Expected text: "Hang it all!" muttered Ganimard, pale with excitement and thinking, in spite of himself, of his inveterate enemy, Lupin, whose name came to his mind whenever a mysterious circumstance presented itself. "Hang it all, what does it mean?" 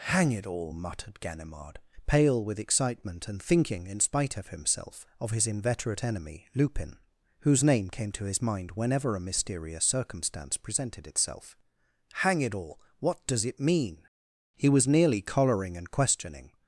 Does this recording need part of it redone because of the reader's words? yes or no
yes